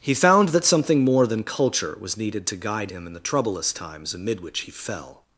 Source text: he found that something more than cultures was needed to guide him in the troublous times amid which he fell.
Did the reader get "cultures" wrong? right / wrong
wrong